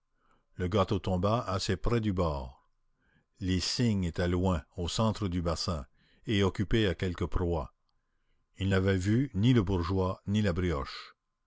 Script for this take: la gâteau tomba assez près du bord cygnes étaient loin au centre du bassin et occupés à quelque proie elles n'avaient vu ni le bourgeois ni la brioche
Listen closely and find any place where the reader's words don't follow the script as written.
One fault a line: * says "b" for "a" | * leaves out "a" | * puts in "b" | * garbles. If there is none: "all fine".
* says "le" for "la"
* puts in "les"
* says "ils" for "elles"